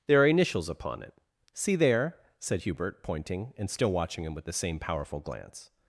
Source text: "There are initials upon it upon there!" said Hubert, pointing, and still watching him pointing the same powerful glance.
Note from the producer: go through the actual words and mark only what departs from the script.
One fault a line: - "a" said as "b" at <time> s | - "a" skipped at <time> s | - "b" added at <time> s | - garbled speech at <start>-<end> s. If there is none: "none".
- "upon" said as "see" at 1.5 s
- "pointing" said as "with" at 4.3 s